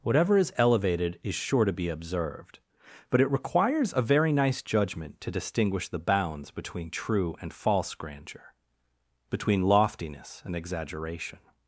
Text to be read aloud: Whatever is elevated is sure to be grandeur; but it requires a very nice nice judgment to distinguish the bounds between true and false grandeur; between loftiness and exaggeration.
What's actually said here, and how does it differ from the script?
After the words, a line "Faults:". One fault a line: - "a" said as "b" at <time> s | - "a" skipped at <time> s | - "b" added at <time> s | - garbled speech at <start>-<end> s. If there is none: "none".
Whatever is elevated is sure to be observed; but it requires a very nice judgment to distinguish the bounds between true and false grandeur; between loftiness and exaggeration.
Faults:
- "grandeur" said as "observed" at 1.9 s
- "nice" skipped at 4.6 s